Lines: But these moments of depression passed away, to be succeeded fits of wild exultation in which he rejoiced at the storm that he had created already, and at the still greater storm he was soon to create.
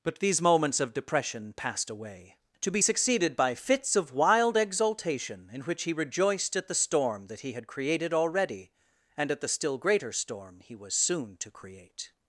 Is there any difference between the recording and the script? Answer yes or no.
yes